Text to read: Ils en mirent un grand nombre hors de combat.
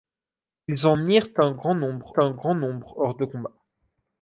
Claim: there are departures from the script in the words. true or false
true